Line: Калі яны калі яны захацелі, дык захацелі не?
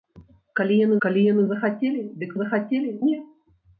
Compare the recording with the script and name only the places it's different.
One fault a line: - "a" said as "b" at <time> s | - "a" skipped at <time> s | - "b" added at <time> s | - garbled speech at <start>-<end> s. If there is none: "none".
none